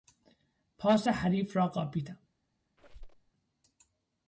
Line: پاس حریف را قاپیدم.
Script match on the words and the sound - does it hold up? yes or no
no